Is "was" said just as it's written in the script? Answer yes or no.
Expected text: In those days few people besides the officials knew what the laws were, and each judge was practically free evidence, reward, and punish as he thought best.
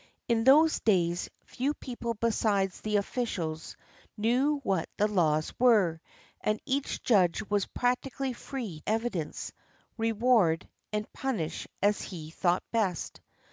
yes